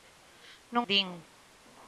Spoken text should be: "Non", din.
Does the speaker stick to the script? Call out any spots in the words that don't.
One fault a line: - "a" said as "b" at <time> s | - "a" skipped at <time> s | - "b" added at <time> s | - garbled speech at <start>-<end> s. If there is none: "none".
none